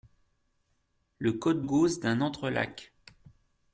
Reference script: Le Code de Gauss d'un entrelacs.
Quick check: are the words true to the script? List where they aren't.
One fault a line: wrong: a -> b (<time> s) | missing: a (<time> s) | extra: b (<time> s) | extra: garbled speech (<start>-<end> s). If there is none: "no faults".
missing: de (1.6 s)